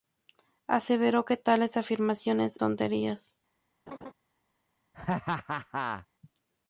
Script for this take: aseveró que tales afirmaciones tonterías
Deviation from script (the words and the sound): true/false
true